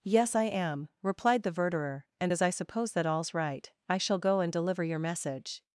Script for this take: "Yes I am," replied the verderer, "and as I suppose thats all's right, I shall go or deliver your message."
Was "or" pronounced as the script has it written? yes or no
no